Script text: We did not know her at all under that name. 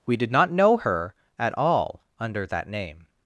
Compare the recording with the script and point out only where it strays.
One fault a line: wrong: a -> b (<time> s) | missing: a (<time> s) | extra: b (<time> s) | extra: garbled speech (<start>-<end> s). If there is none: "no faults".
no faults